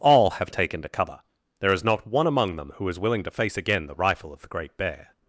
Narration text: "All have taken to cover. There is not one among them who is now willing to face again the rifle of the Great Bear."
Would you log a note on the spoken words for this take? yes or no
yes